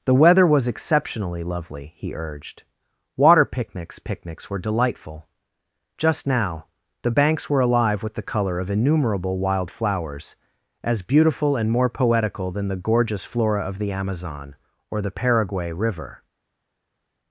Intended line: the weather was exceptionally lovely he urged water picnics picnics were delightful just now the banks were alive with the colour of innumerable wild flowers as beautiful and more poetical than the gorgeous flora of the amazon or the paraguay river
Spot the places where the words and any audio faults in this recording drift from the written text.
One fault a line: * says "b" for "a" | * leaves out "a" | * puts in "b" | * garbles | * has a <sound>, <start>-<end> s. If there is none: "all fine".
all fine